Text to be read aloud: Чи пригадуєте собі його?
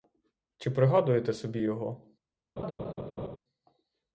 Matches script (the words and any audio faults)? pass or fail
fail